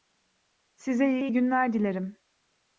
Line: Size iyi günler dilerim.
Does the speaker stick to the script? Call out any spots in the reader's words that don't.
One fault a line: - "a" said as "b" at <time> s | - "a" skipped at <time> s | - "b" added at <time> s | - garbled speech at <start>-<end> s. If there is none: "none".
- "iyi" added at 1.2 s